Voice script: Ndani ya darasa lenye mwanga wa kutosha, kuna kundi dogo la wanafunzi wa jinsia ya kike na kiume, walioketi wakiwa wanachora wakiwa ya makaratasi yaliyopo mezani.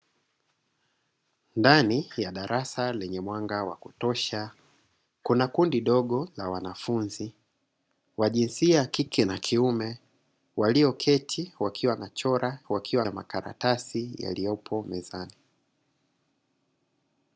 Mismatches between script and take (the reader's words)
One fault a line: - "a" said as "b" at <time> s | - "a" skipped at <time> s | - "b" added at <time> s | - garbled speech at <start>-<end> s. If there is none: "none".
none